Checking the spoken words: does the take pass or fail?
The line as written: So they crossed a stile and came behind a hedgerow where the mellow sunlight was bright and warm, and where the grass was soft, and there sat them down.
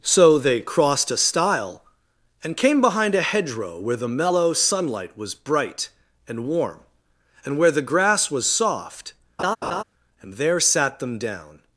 pass